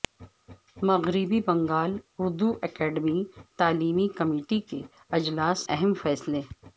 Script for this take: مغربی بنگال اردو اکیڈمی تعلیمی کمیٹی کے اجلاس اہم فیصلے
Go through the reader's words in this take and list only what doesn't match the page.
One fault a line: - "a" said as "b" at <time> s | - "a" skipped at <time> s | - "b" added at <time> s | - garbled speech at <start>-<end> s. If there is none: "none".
none